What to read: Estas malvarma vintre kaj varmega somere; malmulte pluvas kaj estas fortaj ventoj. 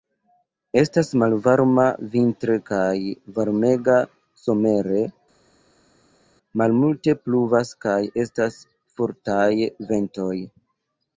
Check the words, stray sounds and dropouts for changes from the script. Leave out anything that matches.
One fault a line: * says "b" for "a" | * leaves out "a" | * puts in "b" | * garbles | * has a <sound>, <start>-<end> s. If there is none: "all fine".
all fine